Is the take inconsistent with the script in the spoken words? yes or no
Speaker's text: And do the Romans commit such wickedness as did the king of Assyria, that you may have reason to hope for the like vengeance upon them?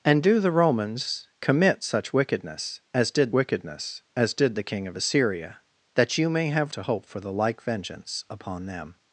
yes